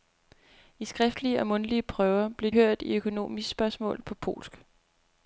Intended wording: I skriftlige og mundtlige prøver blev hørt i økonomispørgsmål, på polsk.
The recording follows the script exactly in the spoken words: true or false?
true